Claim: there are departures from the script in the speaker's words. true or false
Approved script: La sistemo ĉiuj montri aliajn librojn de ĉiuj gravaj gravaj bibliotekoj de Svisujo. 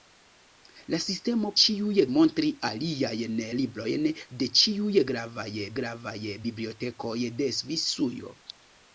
false